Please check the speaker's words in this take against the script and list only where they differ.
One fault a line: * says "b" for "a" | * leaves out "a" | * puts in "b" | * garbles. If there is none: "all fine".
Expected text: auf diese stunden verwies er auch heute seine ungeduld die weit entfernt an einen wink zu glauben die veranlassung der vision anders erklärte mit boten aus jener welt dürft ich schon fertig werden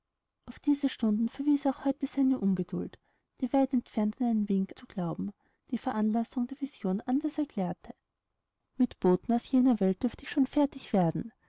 all fine